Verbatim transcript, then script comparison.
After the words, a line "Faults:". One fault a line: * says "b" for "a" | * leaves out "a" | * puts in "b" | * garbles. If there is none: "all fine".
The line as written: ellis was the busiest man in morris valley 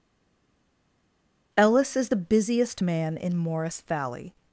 ellis is the busiest man in morris valley
Faults:
* says "is" for "was"